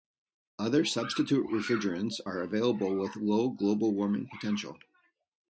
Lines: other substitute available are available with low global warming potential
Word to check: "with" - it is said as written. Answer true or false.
true